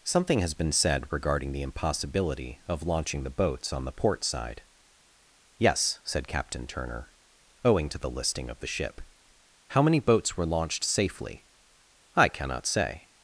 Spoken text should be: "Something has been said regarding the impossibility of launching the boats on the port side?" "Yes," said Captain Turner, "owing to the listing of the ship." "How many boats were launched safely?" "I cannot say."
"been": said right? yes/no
yes